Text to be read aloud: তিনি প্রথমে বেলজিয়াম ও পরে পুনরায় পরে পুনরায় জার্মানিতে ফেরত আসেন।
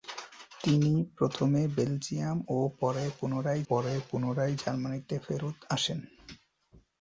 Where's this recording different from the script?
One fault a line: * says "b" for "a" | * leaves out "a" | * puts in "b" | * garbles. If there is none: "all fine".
all fine